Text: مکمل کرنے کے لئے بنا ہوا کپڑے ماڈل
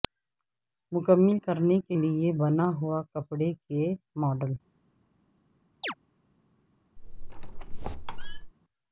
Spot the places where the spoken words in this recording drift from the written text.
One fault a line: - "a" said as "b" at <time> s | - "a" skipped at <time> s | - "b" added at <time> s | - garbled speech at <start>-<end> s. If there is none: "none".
- "کے" added at 3.7 s